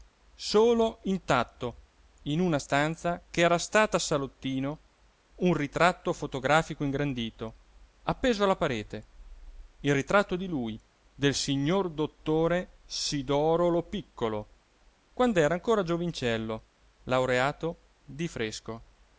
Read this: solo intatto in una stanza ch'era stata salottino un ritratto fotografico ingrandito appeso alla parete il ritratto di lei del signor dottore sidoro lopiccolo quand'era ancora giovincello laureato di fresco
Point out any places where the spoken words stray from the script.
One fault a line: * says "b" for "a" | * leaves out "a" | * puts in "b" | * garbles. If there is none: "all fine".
* says "lui" for "lei"